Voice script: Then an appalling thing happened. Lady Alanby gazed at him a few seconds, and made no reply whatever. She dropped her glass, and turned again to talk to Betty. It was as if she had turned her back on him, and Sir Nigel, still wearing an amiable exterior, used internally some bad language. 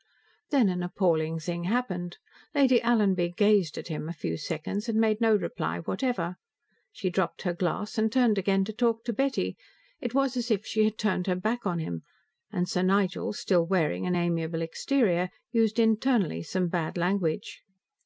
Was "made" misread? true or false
false